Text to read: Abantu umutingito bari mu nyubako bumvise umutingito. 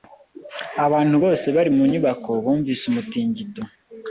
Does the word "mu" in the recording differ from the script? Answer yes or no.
no